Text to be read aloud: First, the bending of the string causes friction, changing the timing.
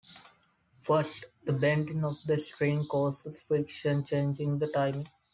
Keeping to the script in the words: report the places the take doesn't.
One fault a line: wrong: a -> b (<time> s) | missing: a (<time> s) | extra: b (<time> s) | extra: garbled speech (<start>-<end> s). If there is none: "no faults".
no faults